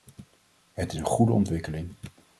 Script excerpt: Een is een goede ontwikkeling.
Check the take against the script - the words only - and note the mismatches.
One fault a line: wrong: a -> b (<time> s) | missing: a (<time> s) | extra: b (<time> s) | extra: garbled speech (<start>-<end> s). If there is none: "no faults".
wrong: Een -> Het (0.7 s)